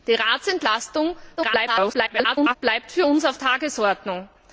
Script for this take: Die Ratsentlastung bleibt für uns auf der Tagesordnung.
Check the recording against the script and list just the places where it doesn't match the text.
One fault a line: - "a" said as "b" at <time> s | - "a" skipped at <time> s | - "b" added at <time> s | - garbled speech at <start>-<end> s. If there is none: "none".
- garbled speech at 1.4-2.6 s
- "der" skipped at 3.4 s